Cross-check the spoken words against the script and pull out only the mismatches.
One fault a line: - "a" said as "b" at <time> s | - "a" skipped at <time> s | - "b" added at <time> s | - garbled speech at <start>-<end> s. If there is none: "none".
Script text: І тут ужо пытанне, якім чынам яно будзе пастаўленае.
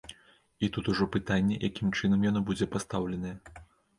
none